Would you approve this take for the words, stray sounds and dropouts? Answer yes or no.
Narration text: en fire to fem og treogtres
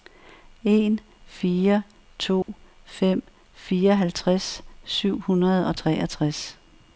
no